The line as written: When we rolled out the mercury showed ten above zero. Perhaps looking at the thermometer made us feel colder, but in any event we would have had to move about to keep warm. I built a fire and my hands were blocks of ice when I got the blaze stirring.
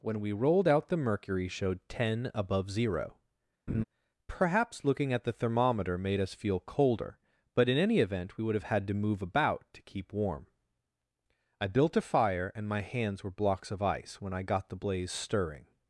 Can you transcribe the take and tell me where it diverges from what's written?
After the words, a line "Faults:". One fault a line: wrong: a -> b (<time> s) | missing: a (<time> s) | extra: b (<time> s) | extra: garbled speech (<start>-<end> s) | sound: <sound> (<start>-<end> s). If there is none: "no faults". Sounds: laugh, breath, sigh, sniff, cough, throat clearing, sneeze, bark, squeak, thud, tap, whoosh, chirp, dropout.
When we rolled out the mercury showed ten above zero. Perhaps looking at the thermometer made us feel colder, but in any event we would have had to move about to keep warm. I built a fire and my hands were blocks of ice when I got the blaze stirring.
Faults:
sound: laugh (3.7-3.8 s)